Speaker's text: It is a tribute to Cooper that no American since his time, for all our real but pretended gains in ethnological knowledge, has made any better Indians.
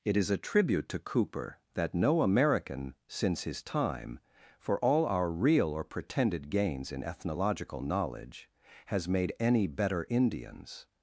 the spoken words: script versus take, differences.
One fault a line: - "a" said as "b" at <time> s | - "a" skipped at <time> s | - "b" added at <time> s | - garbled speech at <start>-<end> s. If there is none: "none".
- "but" said as "or" at 5.7 s